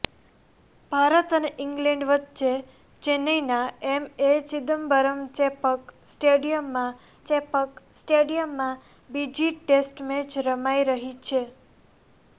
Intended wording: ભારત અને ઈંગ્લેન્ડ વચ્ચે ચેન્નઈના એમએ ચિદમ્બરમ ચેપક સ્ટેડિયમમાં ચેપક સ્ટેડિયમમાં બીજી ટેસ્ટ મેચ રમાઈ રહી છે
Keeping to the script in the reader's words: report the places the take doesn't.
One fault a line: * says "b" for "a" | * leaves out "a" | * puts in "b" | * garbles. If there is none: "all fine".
all fine